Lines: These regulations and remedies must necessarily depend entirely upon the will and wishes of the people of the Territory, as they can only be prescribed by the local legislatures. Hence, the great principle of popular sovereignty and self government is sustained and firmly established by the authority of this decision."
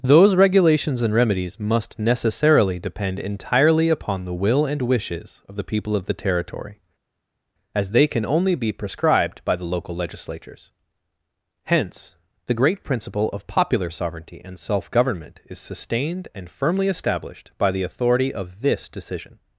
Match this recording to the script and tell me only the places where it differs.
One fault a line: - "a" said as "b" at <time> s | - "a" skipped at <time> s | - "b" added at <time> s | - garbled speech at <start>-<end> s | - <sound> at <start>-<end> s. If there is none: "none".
- "These" said as "Those" at 0.0 s